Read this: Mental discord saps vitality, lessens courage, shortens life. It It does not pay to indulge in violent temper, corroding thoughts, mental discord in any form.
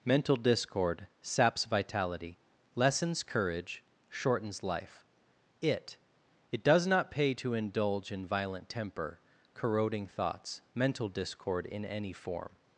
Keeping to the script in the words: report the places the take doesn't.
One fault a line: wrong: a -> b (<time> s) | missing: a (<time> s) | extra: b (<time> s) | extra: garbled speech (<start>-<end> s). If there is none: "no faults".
no faults